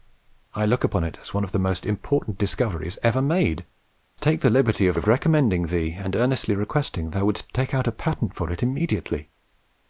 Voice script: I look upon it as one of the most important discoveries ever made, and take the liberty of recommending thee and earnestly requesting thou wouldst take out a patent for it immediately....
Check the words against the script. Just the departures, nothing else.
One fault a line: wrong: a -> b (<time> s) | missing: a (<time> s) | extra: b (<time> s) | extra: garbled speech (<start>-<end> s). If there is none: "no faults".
missing: and (3.6 s)
extra: of (4.9 s)